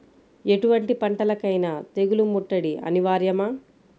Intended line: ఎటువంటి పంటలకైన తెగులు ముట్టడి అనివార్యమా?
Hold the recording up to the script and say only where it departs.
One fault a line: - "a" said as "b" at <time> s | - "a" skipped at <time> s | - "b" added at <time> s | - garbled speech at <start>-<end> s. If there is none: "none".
none